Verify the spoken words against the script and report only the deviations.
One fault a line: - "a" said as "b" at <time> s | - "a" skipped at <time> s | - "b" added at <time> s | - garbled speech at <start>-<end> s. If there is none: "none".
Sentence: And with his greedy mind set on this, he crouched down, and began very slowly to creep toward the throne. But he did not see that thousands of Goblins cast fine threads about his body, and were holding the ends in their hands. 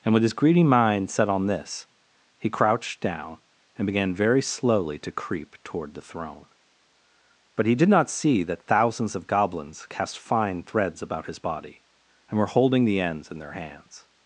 none